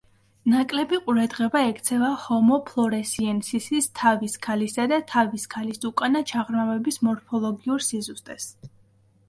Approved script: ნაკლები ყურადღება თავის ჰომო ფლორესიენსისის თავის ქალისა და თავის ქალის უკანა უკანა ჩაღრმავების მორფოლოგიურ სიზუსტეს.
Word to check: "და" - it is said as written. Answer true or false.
true